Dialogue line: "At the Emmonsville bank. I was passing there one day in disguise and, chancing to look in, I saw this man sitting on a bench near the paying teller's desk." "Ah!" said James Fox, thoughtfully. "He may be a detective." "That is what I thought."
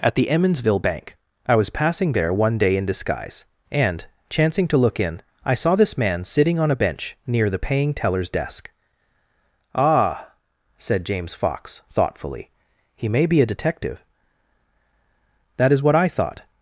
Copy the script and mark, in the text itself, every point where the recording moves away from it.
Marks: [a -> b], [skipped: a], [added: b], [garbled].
"At the Emmonsville bank. I was passing there one day in disguise and, chancing to look in, I saw this man sitting on a bench near the paying teller's desk." "Ah!" said James Fox, thoughtfully. "He may be a detective." "That is what I thought."